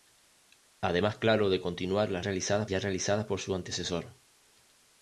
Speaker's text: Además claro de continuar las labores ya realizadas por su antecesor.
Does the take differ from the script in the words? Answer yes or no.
yes